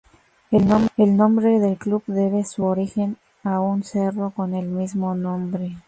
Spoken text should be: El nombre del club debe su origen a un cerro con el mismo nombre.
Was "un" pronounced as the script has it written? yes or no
yes